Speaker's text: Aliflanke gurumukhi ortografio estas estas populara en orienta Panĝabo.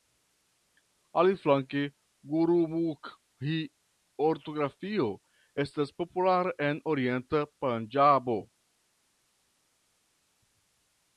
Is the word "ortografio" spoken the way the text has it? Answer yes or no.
yes